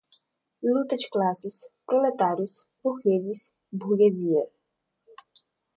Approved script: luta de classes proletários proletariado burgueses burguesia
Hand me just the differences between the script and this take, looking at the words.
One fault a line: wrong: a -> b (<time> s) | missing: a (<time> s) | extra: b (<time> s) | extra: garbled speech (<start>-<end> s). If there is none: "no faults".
missing: proletariado (2.6 s)